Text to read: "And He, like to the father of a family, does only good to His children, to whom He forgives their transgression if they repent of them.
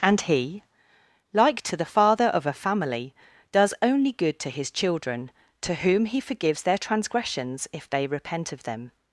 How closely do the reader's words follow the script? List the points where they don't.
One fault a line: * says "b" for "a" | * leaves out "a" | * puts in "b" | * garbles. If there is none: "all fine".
* says "transgressions" for "transgression"